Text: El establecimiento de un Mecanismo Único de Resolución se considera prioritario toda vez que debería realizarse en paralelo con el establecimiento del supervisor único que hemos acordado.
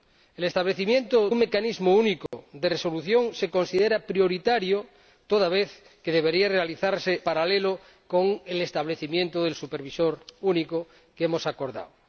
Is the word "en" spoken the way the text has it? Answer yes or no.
no